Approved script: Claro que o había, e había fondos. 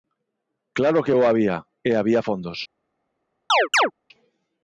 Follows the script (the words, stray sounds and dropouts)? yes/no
no